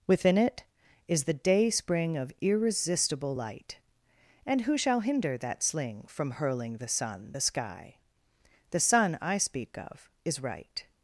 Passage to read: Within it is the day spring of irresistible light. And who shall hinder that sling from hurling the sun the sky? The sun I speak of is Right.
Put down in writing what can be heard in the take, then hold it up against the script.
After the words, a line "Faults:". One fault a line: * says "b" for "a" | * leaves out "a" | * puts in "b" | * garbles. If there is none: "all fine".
Within it is the day spring of irresistible light. And who shall hinder that sling from hurling the sun the sky? The sun I speak of is Right.
Faults:
all fine